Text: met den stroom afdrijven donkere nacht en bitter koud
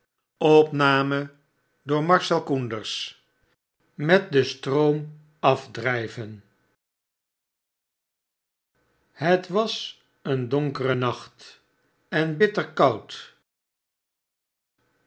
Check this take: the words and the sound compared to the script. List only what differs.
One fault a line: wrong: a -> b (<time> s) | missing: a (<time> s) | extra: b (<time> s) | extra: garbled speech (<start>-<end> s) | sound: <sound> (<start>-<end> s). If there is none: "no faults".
extra: het was een (9.1 s)